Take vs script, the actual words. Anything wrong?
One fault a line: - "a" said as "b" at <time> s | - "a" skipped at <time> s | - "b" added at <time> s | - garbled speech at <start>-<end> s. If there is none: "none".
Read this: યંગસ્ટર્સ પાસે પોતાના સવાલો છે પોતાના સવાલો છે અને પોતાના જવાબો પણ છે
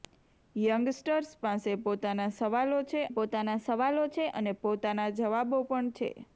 none